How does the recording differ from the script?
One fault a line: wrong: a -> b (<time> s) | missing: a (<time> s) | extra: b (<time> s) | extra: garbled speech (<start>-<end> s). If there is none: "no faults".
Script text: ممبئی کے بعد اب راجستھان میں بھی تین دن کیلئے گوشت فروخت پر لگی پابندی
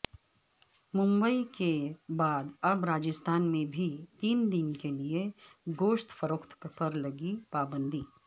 no faults